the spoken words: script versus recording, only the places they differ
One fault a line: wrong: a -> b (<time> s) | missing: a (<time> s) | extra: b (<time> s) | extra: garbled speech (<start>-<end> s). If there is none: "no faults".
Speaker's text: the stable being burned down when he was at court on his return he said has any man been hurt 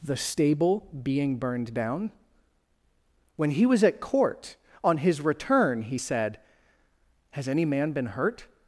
no faults